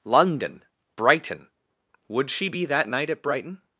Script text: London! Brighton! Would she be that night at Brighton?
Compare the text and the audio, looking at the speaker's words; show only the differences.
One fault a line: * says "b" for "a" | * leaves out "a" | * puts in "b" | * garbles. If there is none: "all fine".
all fine